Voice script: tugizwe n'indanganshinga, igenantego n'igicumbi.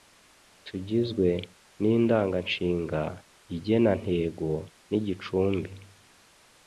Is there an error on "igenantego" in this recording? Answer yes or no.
no